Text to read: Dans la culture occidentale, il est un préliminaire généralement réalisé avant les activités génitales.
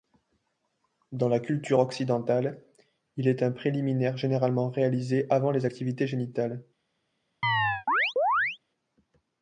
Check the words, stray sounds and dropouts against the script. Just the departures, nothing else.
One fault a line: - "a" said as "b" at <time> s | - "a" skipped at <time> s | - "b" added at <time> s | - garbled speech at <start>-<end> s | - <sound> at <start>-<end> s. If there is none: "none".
- chirp at 7.4-8.6 s